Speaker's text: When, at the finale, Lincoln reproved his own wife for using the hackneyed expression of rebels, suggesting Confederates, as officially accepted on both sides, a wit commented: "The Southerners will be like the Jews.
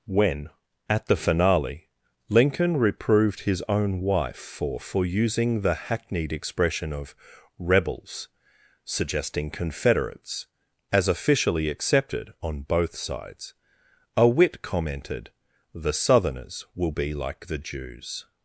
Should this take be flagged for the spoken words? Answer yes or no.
yes